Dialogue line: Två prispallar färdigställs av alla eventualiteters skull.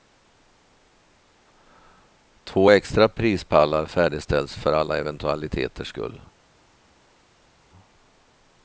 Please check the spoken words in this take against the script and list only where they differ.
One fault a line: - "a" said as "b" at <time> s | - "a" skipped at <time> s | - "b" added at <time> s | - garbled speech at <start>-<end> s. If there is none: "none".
- "extra" added at 2.7 s
- "av" said as "för" at 4.6 s